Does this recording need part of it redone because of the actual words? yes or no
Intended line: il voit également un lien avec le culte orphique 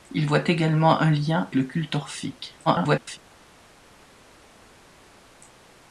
yes